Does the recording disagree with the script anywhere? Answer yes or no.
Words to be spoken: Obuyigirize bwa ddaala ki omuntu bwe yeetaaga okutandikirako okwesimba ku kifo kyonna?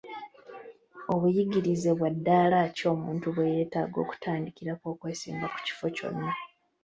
no